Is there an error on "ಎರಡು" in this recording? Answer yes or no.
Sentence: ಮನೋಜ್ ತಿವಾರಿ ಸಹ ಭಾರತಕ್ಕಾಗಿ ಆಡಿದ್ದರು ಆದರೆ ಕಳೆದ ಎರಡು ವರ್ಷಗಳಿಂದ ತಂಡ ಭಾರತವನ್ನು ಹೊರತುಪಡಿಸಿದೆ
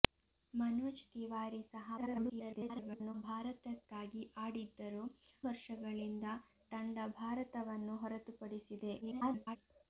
yes